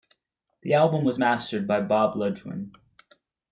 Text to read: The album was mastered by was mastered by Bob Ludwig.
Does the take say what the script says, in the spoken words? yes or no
no